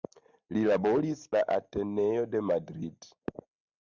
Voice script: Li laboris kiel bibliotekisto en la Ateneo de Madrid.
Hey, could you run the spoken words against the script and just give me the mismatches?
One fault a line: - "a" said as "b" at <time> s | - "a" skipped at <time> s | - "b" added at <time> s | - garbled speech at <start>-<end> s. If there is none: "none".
- "kiel bibliotekisto en" skipped at 1.2 s